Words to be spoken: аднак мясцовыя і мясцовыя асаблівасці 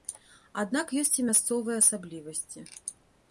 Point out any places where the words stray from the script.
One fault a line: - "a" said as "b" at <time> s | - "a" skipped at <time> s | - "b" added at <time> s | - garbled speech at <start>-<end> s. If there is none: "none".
- "мясцовыя" said as "ёсць" at 1.0 s